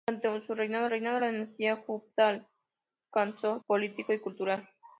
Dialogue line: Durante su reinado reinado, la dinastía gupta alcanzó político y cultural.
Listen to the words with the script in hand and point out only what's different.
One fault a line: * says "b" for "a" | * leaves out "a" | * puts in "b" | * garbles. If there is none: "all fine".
all fine